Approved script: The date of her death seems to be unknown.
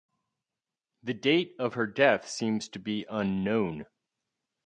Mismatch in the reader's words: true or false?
false